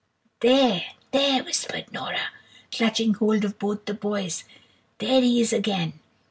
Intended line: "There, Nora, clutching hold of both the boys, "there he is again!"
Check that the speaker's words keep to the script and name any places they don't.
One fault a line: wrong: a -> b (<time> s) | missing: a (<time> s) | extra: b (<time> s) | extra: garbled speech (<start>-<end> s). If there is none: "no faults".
extra: there whispered (1.1 s)